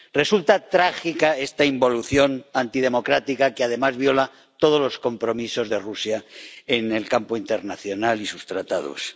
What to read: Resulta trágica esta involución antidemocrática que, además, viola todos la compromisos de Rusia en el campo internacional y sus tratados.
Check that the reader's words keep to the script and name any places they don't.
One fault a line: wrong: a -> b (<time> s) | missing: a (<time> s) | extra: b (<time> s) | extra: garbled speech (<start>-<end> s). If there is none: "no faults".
wrong: la -> los (4.8 s)